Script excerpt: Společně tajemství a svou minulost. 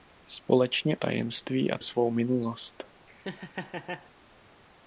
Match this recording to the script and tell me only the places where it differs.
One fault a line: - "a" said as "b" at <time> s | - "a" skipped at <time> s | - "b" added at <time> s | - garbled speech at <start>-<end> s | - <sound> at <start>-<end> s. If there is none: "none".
- laugh at 3.1-4.1 s